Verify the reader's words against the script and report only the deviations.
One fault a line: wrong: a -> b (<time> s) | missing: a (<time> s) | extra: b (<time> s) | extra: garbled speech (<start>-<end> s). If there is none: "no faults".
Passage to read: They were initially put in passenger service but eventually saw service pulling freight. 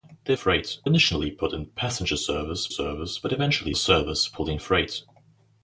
wrong: were -> freight (0.3 s)
extra: service (2.7 s)
missing: saw (3.7 s)